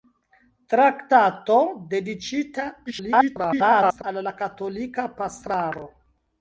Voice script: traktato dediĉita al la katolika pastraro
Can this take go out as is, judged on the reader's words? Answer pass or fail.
fail